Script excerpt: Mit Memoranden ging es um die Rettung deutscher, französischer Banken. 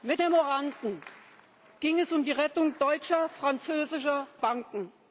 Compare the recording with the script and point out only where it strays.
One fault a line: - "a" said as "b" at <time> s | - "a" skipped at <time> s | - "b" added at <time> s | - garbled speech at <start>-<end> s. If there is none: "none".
none